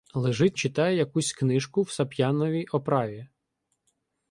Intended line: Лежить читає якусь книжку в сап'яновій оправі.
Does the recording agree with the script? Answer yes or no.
yes